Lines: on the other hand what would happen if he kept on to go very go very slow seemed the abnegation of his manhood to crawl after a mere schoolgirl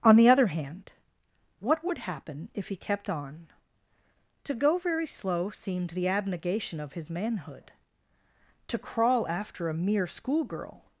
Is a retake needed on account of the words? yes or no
yes